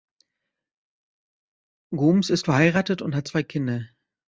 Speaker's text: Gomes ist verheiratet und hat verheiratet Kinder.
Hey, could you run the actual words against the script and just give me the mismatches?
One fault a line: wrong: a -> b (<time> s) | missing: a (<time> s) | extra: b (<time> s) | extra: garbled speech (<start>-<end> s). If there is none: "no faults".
wrong: verheiratet -> zwei (3.3 s)